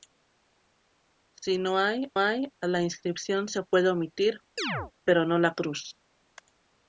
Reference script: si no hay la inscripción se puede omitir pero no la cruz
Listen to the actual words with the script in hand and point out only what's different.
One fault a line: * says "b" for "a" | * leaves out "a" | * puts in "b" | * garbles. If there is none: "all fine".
* puts in "hay"